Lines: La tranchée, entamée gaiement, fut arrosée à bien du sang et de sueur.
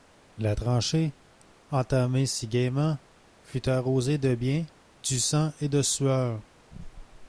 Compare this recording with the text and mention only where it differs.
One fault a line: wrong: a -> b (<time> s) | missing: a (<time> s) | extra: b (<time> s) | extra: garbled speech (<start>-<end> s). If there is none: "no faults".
extra: si (2.2 s)
wrong: à -> de (4.2 s)